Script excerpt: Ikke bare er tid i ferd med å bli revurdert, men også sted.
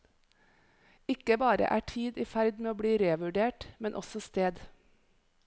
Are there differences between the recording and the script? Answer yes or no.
no